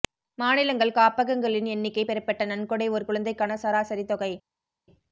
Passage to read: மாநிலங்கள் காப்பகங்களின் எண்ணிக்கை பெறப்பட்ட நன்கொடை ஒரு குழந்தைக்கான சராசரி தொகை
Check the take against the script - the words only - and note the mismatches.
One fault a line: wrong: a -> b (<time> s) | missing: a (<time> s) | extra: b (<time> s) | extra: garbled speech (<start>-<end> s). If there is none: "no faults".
no faults